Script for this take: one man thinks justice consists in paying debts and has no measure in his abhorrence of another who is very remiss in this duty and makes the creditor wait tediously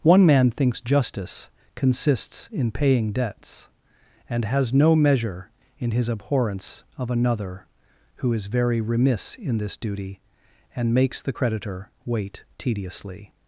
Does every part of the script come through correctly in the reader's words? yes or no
yes